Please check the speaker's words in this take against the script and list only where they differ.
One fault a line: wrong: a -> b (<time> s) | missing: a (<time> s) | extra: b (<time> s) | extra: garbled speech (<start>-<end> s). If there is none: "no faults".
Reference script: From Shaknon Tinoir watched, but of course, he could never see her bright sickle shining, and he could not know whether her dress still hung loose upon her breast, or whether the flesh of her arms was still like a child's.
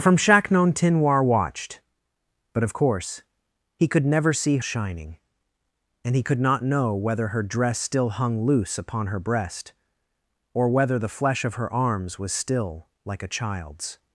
missing: her bright sickle (4.6 s)